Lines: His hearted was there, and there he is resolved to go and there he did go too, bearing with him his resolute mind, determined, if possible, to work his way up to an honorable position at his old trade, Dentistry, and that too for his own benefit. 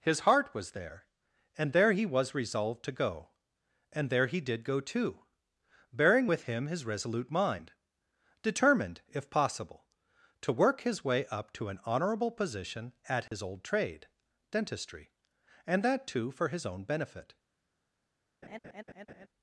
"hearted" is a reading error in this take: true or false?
true